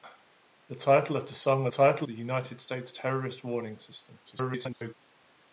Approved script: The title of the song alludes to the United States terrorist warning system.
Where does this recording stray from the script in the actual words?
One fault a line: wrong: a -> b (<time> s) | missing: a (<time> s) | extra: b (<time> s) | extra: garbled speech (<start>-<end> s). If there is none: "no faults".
wrong: alludes -> title (1.6 s)
extra: garbled speech (4.3-4.9 s)